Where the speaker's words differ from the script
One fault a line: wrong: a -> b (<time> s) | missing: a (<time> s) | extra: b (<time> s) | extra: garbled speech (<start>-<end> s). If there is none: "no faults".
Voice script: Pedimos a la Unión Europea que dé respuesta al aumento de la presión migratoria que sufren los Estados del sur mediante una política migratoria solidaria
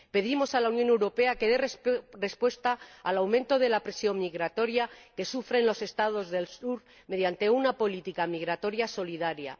no faults